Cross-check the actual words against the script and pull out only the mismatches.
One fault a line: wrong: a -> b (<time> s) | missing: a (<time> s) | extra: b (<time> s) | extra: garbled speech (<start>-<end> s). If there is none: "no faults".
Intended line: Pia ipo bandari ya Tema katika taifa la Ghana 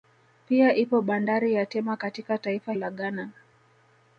no faults